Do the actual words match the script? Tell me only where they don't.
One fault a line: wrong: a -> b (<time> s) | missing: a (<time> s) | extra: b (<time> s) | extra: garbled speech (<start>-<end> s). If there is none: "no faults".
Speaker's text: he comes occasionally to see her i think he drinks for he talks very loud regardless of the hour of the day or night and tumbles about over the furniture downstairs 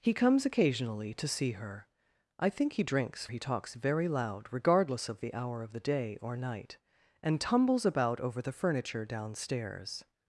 missing: for (3.3 s)